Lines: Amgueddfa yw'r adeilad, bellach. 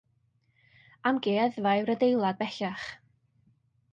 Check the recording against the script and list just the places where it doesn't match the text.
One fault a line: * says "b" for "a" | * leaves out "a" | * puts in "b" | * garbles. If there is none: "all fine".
all fine